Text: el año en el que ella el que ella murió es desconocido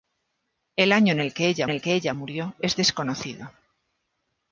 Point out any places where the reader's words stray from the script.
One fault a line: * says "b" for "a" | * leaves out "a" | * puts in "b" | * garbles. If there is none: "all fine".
all fine